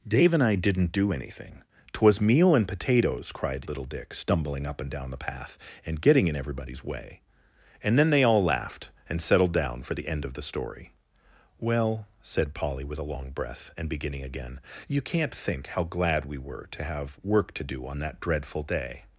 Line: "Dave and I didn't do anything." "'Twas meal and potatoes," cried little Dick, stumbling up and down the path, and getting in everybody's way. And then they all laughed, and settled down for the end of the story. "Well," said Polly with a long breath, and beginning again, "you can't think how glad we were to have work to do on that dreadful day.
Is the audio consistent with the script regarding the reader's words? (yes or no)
yes